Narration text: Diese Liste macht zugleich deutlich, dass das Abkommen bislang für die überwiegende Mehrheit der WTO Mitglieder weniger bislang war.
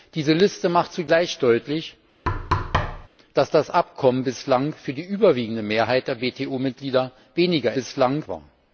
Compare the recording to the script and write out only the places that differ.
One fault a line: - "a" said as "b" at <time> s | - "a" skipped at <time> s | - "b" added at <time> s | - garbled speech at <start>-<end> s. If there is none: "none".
none